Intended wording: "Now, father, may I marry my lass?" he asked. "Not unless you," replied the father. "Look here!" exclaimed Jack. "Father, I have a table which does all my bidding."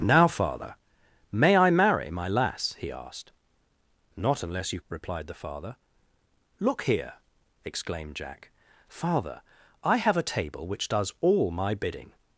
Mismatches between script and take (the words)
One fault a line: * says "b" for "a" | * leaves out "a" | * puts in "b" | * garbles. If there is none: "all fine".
all fine